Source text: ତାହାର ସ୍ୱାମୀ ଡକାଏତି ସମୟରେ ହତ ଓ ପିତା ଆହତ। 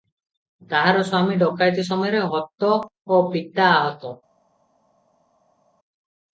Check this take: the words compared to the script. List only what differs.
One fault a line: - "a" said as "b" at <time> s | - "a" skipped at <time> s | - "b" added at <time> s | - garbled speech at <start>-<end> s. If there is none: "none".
none